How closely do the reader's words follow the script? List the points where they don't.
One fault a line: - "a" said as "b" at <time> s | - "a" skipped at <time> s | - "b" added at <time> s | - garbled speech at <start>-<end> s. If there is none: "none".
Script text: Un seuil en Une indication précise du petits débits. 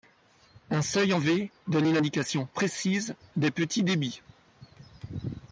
- "V donne" added at 1.2 s
- "du" said as "des" at 3.4 s